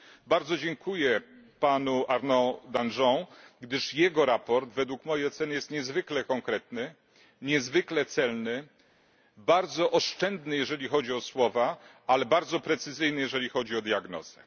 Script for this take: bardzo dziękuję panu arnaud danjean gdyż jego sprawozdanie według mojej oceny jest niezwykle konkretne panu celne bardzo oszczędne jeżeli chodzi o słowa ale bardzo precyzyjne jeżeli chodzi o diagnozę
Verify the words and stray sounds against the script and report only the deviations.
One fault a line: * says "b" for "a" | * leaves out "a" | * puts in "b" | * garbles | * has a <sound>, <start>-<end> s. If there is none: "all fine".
* says "niezwykle" for "panu"